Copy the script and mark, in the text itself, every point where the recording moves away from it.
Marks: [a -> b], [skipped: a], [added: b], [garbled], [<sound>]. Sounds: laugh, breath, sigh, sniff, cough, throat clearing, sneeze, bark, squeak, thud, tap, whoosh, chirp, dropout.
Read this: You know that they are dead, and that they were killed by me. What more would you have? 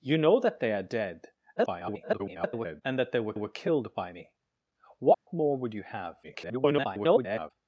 You know that they are dead, [garbled] and that they were [added: were] killed by me. What [dropout] more would you have? [garbled]